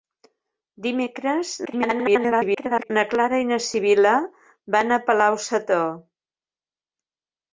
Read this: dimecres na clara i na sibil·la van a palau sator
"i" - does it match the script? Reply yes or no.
yes